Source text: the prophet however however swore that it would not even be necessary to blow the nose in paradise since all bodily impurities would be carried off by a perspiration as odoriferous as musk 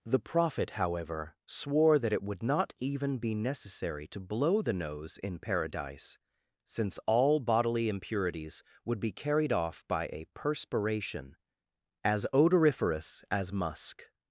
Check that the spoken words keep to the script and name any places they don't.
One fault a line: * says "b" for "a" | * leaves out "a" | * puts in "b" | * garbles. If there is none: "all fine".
* leaves out "however"